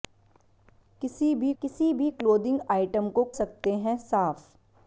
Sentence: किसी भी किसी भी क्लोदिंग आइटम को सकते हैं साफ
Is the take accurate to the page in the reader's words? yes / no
yes